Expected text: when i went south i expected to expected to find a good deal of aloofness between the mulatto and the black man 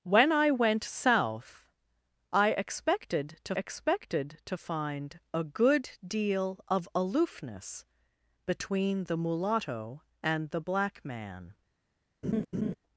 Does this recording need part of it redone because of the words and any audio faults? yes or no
yes